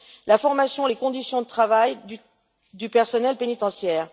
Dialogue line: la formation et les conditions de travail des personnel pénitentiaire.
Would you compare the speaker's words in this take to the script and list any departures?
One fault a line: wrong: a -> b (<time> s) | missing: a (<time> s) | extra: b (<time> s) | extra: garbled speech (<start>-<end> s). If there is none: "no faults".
wrong: des -> du (2.7 s)